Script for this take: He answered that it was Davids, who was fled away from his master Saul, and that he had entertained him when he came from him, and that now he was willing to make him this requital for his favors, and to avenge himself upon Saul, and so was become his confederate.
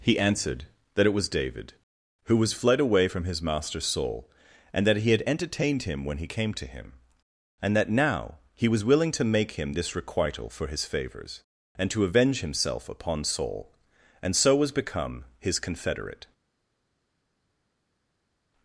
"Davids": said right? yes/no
no